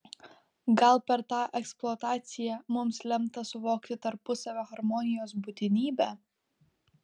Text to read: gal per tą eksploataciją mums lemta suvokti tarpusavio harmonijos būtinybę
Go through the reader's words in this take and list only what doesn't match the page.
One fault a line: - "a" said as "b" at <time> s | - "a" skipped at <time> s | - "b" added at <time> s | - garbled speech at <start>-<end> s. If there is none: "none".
none